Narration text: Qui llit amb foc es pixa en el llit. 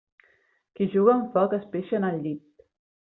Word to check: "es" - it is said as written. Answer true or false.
true